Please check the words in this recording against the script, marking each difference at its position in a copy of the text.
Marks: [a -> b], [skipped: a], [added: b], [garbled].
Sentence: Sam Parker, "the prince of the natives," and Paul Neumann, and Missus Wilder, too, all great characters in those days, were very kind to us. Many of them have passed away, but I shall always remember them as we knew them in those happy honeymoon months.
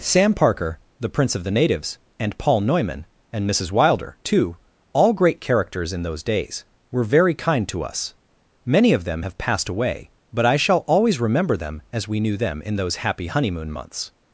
Sam Parker, "the prince of the natives," and Paul Neumann, and Missus Wilder, too, all great characters in those days, were very kind to us. Many of them have passed away, but I shall always remember them as we knew them in those happy honeymoon months.